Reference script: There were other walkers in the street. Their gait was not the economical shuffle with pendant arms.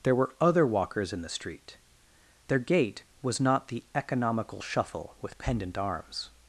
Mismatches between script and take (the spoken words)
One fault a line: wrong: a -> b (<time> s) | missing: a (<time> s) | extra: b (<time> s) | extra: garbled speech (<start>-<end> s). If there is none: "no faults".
no faults